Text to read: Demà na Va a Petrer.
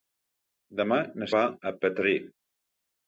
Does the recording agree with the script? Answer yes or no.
yes